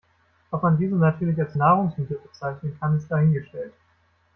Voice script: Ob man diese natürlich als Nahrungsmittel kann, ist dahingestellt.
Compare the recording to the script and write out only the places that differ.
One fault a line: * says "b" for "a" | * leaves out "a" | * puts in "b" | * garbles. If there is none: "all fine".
* puts in "bezeichnen"